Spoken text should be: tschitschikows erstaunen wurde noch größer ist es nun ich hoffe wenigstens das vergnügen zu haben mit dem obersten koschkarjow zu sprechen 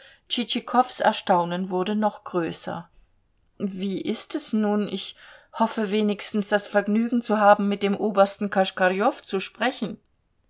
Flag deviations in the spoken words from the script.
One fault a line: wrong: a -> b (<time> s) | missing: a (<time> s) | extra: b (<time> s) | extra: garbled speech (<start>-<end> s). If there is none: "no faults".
extra: wie (3.6 s)